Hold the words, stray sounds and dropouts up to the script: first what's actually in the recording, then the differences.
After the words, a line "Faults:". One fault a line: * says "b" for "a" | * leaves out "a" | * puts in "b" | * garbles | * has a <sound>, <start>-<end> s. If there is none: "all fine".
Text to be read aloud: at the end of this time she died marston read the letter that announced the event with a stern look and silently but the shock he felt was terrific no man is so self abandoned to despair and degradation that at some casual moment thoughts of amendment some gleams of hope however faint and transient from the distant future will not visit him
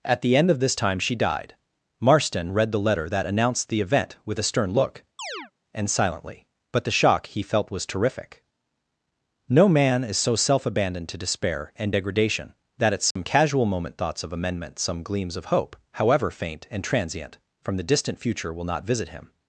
at the end of this time she died marston read the letter that announced the event with a stern look and silently but the shock he felt was terrific no man is so self abandoned to despair and degradation that at some casual moment thoughts of amendment some gleams of hope however faint and transient from the distant future will not visit him
Faults:
* has a chirp, 5.2-5.5 s
* has a dropout, 13.1-13.2 s